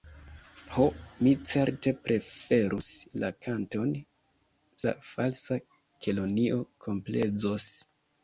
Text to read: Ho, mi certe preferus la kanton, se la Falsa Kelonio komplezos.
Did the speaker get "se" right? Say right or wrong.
wrong